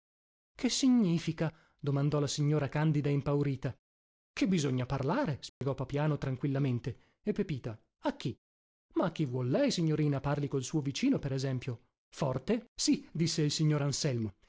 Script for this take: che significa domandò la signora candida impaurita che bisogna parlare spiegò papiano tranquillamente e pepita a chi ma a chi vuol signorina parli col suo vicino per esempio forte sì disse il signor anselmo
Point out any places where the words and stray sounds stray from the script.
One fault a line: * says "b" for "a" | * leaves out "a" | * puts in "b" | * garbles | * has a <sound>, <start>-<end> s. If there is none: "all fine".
* has a dropout, 5.5-5.6 s
* puts in "lei"